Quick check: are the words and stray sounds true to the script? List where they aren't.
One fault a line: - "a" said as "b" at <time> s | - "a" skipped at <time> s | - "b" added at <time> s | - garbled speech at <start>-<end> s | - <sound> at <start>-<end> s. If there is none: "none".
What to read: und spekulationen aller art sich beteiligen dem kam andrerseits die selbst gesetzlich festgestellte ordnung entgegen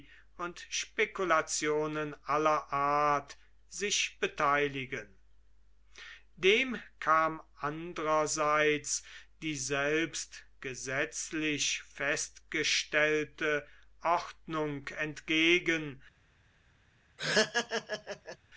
- laugh at 17.2-18.4 s